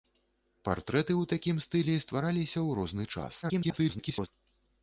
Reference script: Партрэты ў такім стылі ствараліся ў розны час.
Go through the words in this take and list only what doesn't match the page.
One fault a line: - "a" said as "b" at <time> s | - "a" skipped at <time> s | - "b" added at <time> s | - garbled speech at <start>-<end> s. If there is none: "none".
- garbled speech at 3.4-4.3 s